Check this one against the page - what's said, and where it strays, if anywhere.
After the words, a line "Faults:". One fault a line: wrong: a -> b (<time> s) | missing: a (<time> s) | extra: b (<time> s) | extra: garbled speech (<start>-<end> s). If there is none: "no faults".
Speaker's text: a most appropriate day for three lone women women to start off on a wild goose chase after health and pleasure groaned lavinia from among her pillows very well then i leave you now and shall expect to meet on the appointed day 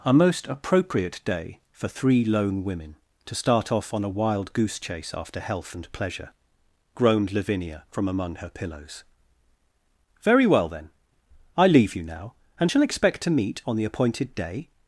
a most appropriate day for three lone women to start off on a wild goose chase after health and pleasure groaned lavinia from among her pillows very well then i leave you now and shall expect to meet on the appointed day
Faults:
missing: women (3.0 s)